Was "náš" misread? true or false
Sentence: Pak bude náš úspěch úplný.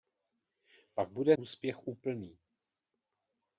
true